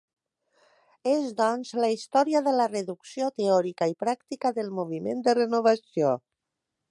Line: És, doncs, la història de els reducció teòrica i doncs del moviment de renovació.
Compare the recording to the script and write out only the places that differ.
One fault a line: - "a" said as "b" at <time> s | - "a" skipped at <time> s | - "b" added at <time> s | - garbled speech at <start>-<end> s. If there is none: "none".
- "els" said as "la" at 2.5 s
- "doncs" said as "pràctica" at 4.0 s